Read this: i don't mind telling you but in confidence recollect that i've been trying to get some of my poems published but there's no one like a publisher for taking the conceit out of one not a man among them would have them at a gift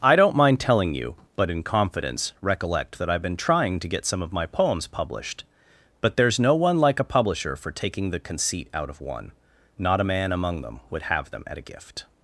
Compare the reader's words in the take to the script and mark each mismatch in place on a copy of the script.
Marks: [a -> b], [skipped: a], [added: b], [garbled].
i don't mind telling you but in confidence recollect that i've been trying to get some of my poems published but there's no one like a publisher for taking the conceit out of one not a man among them would have them at a gift